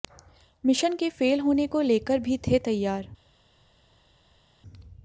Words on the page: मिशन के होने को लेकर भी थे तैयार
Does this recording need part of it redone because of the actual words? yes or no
yes